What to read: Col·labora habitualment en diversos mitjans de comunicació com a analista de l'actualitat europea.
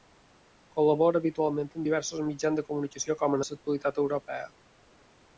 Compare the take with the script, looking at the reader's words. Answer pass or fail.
fail